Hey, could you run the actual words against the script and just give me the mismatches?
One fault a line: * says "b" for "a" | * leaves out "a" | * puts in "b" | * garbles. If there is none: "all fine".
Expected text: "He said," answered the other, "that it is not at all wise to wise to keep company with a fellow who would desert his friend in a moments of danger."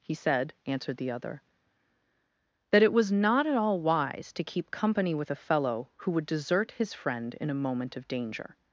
* says "was" for "is"
* leaves out "wise to"
* says "moment" for "moments"